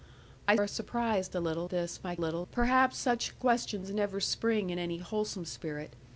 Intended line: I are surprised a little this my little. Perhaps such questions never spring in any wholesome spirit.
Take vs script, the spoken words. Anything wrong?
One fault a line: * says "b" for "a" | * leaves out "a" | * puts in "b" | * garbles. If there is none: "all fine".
all fine